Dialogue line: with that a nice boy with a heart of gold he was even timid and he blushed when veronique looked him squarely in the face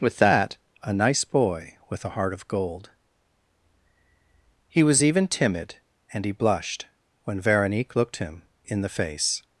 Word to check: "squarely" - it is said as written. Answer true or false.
false